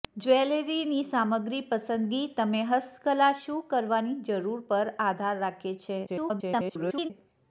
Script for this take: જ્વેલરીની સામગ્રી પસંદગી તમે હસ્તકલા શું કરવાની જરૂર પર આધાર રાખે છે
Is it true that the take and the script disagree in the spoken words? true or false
true